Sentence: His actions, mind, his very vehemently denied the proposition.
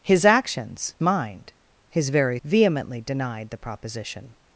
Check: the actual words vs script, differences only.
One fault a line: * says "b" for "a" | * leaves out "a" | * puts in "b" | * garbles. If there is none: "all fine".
all fine